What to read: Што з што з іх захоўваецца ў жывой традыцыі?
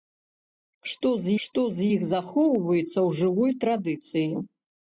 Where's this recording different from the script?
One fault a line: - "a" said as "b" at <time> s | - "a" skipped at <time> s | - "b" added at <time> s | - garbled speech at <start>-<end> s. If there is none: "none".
none